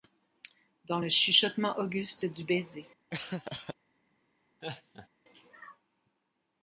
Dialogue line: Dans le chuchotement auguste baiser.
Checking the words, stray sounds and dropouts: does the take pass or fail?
fail